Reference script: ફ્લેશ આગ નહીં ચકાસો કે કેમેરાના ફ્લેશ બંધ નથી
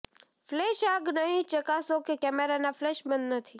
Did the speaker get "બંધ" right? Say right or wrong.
right